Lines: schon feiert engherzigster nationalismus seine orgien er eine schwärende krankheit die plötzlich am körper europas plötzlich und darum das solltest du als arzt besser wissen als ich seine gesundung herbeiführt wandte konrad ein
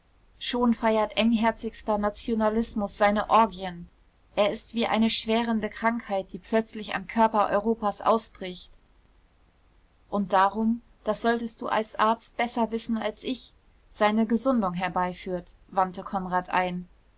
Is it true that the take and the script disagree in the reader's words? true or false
true